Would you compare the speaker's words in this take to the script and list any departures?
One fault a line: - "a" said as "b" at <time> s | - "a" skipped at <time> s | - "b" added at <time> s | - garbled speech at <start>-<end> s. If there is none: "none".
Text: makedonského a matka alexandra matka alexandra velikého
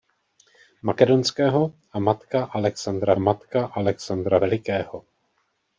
none